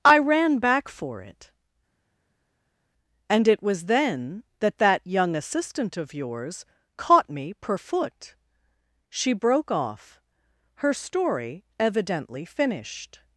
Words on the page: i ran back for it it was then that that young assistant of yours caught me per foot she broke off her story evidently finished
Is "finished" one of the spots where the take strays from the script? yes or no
no